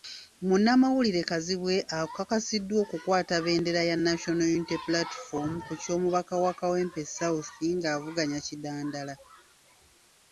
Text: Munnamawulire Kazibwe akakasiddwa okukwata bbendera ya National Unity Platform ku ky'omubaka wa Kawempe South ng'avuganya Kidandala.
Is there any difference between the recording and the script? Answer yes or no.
no